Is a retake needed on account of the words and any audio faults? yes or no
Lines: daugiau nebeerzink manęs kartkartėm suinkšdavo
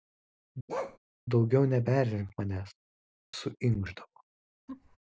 yes